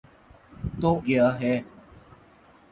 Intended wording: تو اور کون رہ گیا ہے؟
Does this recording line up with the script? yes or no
no